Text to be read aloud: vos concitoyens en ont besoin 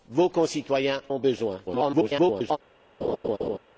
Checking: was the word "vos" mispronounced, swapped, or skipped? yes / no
no